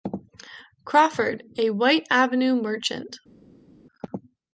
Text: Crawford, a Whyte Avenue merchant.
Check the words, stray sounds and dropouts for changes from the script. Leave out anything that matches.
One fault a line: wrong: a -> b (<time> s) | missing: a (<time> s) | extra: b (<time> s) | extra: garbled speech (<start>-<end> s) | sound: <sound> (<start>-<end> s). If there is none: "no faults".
no faults